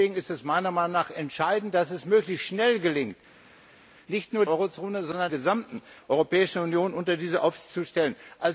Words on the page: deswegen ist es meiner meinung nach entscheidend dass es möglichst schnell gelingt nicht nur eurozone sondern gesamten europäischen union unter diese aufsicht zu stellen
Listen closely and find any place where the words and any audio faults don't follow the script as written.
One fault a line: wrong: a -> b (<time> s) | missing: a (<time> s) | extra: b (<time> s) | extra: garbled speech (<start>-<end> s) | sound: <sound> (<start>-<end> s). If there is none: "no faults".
no faults